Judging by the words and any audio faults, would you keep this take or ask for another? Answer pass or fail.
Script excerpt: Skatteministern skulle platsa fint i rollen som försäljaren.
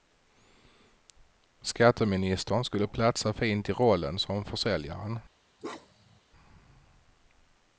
fail